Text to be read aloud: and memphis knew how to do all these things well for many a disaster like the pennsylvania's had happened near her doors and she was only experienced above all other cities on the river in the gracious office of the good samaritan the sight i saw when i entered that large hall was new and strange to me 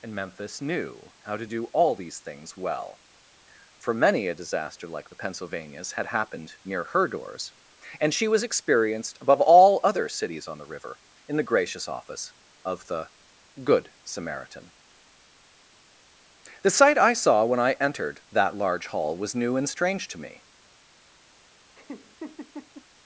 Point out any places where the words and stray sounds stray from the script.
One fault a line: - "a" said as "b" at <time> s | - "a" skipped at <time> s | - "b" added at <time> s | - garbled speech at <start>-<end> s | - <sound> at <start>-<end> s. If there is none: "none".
- "only" skipped at 8.4 s
- laugh at 21.8-22.9 s